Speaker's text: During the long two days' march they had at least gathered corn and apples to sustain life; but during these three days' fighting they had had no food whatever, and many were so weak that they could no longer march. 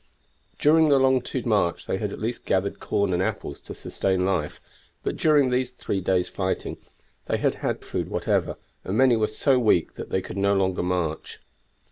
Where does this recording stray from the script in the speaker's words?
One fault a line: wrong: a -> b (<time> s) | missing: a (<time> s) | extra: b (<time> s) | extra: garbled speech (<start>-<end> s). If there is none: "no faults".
missing: days (1.4 s)
missing: no (7.8 s)